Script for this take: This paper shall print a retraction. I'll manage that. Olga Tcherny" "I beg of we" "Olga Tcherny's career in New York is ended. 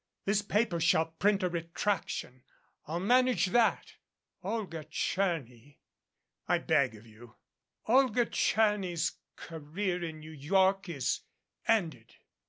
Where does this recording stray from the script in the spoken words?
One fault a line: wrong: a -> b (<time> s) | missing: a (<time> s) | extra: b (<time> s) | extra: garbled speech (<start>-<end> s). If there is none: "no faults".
wrong: we -> you (7.0 s)